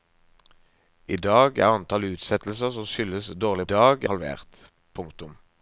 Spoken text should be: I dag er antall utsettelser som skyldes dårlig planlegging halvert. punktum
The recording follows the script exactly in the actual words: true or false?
false